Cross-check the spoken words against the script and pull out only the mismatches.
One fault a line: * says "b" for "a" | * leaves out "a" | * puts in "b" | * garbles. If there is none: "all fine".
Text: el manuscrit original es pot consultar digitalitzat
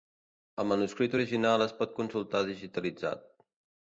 all fine